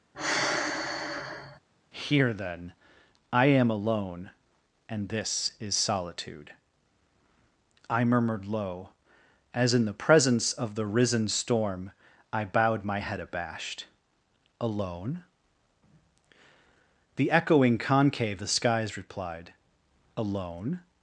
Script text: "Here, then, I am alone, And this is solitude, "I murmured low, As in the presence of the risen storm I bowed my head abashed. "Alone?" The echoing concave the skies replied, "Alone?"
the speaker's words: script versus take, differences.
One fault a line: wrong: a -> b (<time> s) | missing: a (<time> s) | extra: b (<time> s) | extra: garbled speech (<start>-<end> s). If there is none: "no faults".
no faults